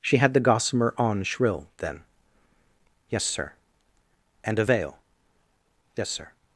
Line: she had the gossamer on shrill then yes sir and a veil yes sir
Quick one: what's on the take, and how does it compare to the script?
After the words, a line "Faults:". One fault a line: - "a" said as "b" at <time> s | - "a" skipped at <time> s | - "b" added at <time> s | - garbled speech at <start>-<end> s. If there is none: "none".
she had the gossamer on shrill then yes sir and a veil yes sir
Faults:
none